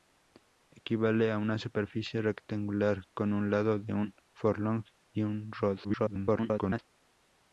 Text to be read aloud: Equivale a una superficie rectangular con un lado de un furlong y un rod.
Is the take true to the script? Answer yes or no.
no